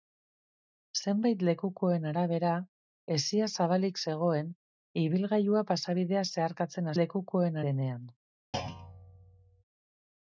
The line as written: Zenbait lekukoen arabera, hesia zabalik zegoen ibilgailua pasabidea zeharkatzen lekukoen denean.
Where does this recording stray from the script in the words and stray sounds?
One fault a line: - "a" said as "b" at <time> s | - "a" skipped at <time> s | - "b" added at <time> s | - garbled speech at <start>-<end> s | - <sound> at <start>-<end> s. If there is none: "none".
- thud at 8.5-9.6 s